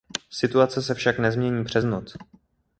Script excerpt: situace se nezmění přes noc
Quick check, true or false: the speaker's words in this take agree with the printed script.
false